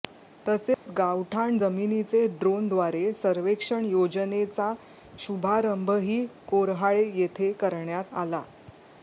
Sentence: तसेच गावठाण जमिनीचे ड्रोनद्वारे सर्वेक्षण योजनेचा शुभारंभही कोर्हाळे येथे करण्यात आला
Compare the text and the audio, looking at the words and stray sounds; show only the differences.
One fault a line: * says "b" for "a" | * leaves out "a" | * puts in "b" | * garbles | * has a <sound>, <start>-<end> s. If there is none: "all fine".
* has a dropout, 0.7-0.9 s